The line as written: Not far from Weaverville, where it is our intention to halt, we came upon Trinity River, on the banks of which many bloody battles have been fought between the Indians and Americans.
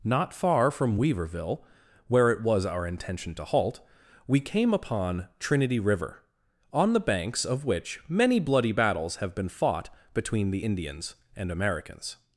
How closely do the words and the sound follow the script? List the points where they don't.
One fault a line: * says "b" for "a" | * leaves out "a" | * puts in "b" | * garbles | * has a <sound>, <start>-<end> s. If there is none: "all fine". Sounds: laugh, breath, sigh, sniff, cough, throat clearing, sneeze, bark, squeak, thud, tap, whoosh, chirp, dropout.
* says "was" for "is"